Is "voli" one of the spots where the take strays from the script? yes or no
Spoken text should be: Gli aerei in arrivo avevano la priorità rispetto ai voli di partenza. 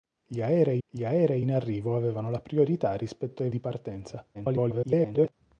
yes